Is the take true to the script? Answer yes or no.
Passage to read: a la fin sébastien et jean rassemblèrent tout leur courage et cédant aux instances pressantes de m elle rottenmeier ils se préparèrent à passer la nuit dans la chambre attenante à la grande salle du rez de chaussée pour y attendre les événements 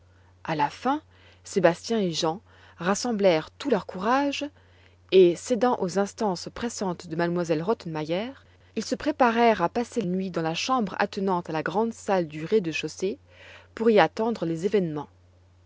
no